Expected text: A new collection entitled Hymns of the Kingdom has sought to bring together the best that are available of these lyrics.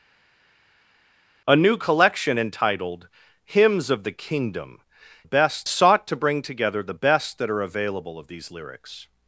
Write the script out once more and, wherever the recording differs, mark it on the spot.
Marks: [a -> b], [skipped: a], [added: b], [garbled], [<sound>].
A new collection entitled Hymns of the Kingdom [has -> best] sought to bring together the best that are available of these lyrics.